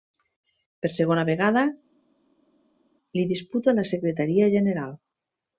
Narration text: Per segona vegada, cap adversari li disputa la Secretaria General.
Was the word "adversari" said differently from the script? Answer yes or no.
yes